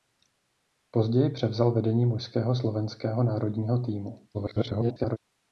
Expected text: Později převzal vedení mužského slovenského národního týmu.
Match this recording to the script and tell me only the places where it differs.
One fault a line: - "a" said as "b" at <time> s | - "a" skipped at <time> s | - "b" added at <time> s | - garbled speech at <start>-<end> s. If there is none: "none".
- garbled speech at 4.3-5.2 s